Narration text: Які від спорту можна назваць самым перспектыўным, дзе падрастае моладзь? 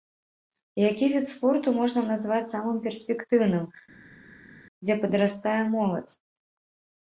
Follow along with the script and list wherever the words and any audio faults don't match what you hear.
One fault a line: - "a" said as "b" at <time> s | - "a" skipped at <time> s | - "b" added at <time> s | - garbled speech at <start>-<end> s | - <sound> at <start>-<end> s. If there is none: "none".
none